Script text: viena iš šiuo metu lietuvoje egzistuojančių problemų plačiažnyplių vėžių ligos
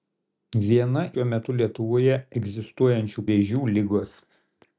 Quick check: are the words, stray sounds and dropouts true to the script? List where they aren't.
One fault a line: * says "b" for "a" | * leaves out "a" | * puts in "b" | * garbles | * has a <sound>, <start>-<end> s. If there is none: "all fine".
* leaves out "iš"
* leaves out "problemų plačiažnyplių"